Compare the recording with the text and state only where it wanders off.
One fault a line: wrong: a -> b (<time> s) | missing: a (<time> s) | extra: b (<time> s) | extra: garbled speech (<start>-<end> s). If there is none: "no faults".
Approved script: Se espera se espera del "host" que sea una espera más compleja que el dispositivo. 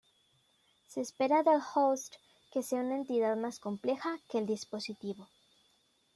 missing: se espera (1.4 s)
wrong: espera -> entidad (3.0 s)